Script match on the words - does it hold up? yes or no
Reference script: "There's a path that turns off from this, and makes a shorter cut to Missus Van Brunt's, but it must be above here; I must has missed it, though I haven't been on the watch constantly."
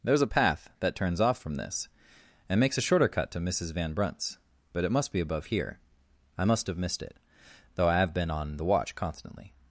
no